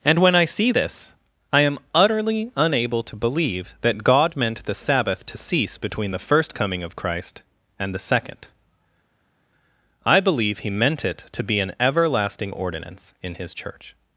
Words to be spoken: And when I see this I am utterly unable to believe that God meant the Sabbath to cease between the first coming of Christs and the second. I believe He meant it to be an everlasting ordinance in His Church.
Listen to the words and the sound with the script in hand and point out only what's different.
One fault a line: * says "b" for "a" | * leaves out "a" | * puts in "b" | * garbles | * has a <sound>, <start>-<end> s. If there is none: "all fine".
* says "Christ" for "Christs"